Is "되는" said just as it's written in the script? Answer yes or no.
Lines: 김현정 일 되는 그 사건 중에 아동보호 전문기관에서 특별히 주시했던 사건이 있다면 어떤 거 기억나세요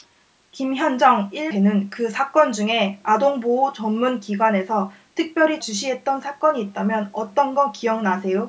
yes